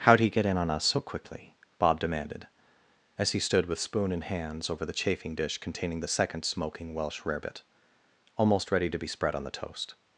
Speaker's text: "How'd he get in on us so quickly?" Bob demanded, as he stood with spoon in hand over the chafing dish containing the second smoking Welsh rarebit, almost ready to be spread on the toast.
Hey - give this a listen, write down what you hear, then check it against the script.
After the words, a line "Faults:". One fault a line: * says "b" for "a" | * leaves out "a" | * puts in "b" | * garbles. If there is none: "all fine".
"How'd he get in on us so quickly?" Bob demanded, as he stood with spoon in hands over the chafing dish containing the second smoking Welsh rarebit, almost ready to be spread on the toast.
Faults:
* says "hands" for "hand"